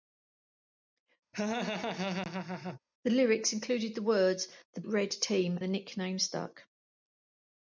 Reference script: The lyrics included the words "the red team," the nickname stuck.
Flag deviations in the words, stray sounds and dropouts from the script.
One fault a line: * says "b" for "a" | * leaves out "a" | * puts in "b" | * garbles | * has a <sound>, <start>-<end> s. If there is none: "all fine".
* has a laugh, 1.3-2.8 s